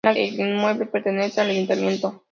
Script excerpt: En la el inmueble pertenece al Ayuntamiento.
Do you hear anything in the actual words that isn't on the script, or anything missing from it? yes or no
no